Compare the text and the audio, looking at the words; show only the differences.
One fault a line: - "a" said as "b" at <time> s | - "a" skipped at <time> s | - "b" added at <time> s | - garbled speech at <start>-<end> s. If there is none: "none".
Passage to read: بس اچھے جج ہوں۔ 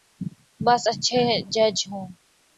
none